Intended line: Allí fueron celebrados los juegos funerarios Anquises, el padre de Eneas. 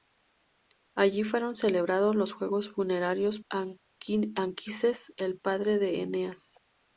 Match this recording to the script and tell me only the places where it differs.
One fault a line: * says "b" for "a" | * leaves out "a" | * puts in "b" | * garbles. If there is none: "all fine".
all fine